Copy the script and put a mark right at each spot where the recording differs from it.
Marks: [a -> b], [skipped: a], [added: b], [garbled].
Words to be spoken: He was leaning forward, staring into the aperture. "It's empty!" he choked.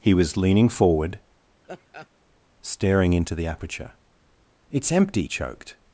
He was leaning forward, staring into the aperture. "It's empty!" [skipped: he] choked.